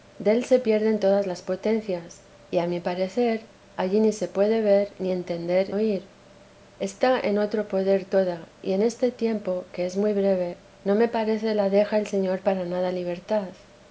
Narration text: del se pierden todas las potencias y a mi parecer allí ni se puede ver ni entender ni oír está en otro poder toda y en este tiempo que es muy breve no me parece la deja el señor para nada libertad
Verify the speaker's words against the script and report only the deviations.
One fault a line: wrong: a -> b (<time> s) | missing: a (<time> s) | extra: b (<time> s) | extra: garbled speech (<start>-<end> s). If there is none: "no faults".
missing: ni (5.8 s)